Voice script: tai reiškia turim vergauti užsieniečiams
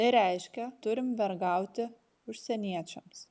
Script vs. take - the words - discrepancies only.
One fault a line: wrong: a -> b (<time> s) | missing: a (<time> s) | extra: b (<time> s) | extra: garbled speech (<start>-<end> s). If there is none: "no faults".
no faults